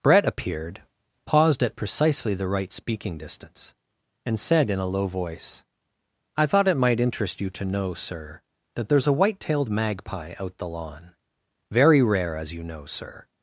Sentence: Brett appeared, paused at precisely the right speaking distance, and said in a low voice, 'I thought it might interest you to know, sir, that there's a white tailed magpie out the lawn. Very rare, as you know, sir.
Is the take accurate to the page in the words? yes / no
yes